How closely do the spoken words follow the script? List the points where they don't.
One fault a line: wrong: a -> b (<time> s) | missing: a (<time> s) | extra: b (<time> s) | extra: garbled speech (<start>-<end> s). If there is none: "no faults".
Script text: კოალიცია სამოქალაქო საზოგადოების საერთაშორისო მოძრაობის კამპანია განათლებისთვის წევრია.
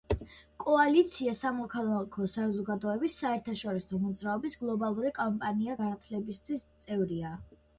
extra: გლობალური (4.6 s)